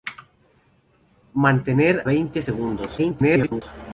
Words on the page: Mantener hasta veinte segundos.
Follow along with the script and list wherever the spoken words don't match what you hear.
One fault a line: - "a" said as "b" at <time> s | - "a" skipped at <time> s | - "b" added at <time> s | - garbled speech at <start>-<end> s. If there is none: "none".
- "hasta" skipped at 2.1 s
- garbled speech at 3.0-3.6 s